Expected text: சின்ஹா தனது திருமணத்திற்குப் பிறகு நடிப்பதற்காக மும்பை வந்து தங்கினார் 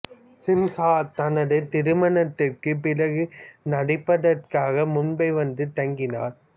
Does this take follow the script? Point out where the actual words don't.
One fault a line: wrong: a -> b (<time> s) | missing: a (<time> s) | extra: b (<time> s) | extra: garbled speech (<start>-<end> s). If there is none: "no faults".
no faults